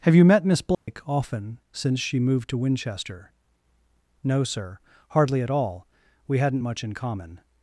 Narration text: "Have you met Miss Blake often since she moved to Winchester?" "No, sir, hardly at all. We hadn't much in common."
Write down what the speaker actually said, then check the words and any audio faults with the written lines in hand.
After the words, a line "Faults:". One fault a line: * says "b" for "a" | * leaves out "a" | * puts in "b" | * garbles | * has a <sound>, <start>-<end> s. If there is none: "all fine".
"Have you met Miss Blake often since she moved to Winchester?" "No, sir, hardly at all. We hadn't much in common."
Faults:
* has a dropout, 0.7-0.9 s